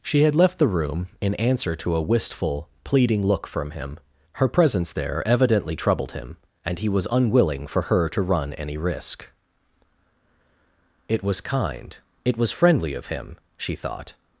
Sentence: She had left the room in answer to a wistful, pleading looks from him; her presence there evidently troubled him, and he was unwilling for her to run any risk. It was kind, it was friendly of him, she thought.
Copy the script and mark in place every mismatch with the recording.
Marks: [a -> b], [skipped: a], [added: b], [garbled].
She had left the room in answer to a wistful, pleading [looks -> look] from him; her presence there evidently troubled him, and he was unwilling for her to run any risk. It was kind, it was friendly of him, she thought.